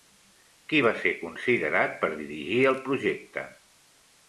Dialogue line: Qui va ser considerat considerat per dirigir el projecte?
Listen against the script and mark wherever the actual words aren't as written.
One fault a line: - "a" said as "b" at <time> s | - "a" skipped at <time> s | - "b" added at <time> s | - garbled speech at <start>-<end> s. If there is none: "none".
- "considerat" skipped at 2.0 s